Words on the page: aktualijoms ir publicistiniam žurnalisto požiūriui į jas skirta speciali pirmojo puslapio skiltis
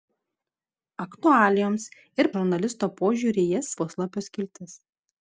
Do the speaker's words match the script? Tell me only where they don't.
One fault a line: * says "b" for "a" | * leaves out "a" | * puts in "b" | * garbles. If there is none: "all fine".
* leaves out "publicistiniam"
* leaves out "skirta speciali pirmojo"